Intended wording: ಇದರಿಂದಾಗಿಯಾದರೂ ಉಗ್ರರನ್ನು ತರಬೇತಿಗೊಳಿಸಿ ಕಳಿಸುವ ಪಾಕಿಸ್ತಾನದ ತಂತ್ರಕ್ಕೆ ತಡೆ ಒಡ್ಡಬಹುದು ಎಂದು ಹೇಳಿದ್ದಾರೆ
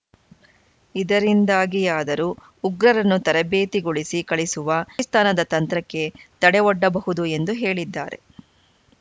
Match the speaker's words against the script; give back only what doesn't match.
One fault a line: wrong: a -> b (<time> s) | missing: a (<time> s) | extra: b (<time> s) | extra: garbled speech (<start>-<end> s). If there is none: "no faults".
no faults